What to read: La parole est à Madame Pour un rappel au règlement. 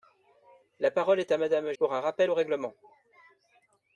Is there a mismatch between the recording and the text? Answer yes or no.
no